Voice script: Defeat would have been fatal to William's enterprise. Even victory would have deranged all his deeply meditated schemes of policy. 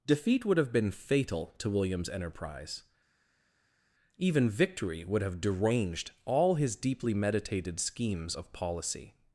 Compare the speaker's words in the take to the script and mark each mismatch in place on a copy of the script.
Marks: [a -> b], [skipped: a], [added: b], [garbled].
Defeat would have been fatal to William's enterprise. Even victory would have deranged all his deeply meditated schemes of policy.